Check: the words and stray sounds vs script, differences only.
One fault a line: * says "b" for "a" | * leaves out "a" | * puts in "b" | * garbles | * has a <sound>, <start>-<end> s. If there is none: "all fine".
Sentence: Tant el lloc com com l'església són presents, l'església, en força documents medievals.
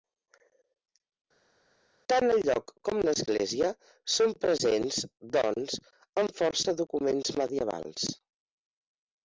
* leaves out "com"
* says "doncs" for "l'església"